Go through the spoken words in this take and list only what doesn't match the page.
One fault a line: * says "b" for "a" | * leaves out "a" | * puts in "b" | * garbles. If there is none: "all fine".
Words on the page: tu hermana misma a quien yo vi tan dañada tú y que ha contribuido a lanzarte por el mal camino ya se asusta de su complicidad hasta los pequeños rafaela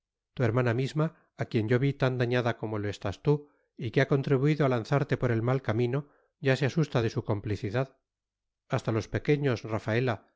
* puts in "como lo estás"